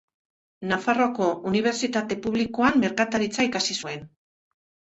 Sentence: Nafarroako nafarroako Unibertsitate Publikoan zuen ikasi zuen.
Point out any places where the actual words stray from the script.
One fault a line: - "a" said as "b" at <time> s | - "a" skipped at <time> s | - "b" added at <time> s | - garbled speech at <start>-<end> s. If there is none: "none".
- "nafarroako" skipped at 1.3 s
- "zuen" said as "merkataritza" at 2.9 s